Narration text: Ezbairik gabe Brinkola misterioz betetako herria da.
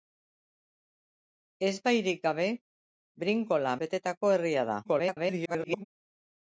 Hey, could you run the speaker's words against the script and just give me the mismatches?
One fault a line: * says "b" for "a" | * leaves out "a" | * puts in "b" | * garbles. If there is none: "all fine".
* leaves out "misterioz"
* garbles